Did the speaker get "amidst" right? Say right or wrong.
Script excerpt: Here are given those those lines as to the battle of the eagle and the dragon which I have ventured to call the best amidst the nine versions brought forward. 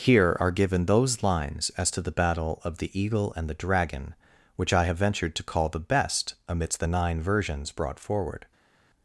right